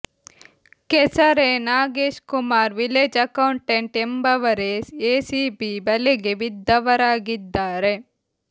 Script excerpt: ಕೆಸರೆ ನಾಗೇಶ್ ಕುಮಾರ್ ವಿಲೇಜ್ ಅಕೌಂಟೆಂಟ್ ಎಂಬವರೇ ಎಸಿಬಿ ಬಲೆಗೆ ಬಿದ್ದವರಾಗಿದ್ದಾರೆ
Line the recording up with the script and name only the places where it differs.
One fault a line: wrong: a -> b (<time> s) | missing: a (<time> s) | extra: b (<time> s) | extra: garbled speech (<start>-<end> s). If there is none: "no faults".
no faults